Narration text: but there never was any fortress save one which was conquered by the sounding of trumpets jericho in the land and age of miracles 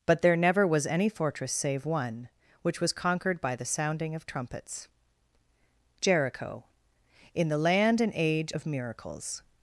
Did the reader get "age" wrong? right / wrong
right